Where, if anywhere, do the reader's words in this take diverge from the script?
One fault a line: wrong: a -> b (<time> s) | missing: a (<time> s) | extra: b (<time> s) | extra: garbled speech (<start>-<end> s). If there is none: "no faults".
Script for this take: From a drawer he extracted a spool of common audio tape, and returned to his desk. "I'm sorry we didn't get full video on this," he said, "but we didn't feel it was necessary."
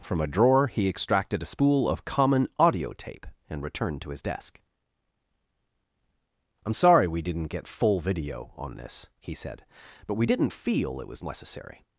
no faults